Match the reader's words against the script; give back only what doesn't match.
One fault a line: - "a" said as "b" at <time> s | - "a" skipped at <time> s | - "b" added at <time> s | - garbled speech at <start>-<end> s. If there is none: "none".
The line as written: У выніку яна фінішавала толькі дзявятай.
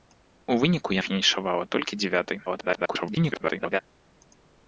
- "яна" skipped at 0.9 s
- garbled speech at 2.5-3.8 s